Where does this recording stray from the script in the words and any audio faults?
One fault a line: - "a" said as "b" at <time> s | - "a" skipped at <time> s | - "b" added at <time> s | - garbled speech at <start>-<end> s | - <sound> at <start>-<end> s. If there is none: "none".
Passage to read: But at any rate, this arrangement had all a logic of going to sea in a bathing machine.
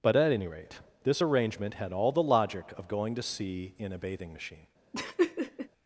- "a" said as "the" at 2.1 s
- laugh at 4.9-5.7 s